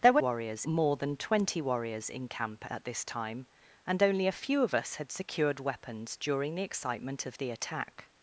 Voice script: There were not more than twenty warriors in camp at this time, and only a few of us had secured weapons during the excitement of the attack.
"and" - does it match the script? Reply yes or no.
yes